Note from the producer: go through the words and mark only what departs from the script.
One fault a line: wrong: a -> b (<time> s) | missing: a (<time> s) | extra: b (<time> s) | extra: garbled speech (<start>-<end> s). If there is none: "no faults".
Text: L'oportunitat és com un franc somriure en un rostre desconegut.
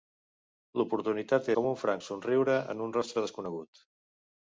missing: és (1.5 s)